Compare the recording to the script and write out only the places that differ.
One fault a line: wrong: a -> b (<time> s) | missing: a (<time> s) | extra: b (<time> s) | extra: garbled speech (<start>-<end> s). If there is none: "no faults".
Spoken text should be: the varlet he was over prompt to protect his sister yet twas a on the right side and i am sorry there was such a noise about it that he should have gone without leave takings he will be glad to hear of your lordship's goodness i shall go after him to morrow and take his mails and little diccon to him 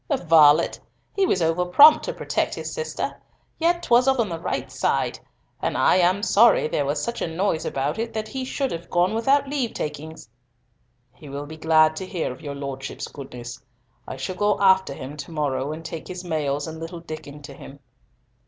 no faults